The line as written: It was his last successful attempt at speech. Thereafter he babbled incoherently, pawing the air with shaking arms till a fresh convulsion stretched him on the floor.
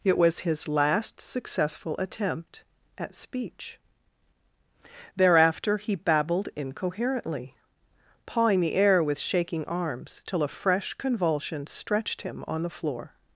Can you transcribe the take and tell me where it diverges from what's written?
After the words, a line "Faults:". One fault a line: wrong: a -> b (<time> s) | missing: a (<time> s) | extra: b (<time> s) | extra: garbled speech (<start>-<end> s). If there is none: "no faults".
It was his last successful attempt at speech. Thereafter he babbled incoherently, pawing the air with shaking arms till a fresh convulsion stretched him on the floor.
Faults:
no faults